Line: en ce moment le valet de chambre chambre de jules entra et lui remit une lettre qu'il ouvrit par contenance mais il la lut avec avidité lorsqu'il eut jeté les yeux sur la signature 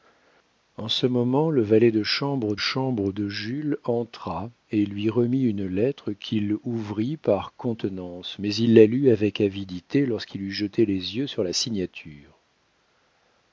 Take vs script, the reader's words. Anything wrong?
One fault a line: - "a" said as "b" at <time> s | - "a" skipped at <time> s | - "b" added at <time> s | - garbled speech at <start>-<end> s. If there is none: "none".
none